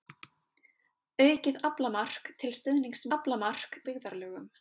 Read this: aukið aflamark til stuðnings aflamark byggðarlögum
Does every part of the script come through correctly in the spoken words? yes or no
yes